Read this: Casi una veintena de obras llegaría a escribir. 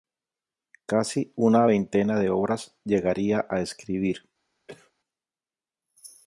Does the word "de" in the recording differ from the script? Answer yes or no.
no